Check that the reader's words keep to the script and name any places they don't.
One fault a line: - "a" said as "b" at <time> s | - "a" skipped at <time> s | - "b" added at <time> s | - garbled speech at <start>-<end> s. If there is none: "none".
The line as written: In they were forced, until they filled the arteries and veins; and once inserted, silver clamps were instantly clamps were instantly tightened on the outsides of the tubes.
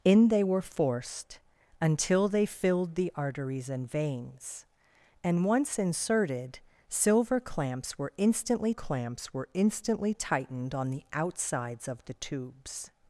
none